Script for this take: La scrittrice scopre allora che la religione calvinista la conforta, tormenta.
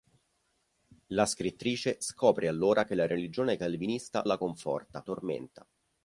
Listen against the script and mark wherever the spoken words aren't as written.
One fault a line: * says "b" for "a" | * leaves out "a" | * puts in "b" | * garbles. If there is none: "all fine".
all fine